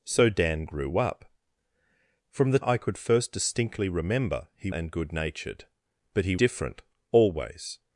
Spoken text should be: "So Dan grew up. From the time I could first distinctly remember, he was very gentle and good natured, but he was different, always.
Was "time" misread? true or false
true